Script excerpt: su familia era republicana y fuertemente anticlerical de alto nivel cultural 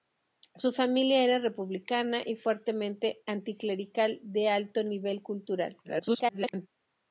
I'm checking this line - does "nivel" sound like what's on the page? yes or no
yes